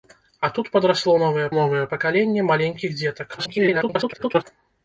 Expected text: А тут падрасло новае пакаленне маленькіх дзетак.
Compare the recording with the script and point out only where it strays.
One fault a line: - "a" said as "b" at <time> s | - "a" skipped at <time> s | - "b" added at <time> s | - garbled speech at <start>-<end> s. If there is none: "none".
- "новае" added at 1.6 s
- garbled speech at 3.4-4.4 s